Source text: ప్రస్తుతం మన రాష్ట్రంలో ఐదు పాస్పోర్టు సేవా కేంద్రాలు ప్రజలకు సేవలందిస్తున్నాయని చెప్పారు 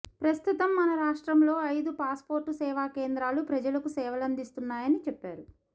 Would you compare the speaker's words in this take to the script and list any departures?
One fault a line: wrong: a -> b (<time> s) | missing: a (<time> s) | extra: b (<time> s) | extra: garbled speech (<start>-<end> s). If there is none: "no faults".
no faults